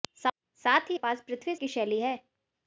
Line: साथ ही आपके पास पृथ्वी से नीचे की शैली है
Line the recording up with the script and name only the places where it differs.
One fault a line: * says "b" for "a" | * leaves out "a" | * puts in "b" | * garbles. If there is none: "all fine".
* leaves out "आपके"
* leaves out "से नीचे"